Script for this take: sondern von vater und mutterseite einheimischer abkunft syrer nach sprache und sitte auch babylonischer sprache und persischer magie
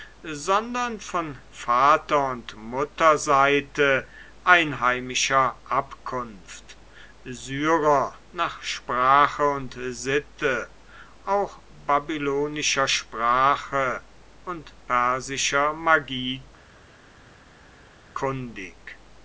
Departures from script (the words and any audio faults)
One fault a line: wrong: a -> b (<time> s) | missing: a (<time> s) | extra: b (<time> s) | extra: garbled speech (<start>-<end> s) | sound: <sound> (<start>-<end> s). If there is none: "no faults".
no faults